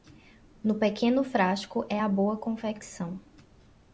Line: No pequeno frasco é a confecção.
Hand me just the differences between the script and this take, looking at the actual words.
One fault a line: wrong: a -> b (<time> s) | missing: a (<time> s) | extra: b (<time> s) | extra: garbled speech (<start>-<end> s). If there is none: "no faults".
extra: boa (2.1 s)